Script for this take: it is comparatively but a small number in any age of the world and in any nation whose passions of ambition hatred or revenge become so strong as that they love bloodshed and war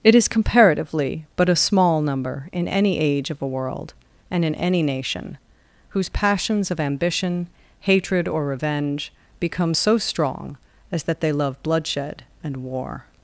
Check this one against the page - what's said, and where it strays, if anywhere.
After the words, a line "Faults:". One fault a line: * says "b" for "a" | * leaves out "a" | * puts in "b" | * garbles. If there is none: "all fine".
it is comparatively but a small number in any age of a world and in any nation whose passions of ambition hatred or revenge become so strong as that they love bloodshed and war
Faults:
* says "a" for "the"